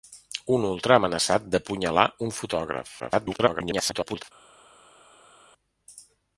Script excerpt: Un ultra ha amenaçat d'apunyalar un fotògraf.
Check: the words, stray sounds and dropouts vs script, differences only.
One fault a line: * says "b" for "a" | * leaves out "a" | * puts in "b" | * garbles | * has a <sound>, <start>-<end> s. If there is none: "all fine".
* garbles